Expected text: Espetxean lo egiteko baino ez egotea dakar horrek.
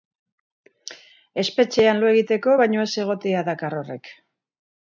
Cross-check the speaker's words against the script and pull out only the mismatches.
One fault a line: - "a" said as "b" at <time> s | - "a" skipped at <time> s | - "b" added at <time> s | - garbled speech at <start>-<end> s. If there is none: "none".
none